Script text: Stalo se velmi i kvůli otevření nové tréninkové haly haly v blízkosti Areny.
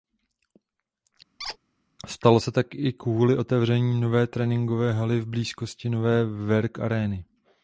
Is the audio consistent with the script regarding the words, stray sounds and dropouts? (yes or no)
no